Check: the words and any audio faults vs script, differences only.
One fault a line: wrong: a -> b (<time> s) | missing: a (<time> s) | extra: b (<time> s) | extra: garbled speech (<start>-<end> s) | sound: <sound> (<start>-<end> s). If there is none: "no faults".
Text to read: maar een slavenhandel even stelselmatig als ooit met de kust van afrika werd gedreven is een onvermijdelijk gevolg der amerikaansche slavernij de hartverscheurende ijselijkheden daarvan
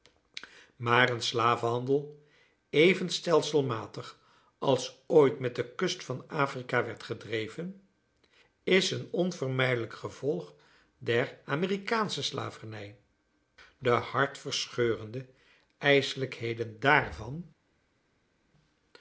no faults